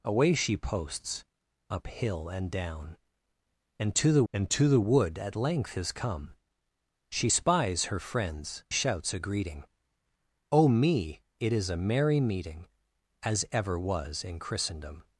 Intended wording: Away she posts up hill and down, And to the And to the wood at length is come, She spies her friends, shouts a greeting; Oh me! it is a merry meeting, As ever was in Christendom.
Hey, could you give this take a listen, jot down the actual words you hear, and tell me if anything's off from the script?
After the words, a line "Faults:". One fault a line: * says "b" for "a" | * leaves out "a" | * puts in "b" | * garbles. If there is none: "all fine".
Away she posts up hill and down, And to the And to the wood at length is come, She spies her friends, shouts a greeting; Oh me! it is a merry meeting, As ever was in Christendom.
Faults:
all fine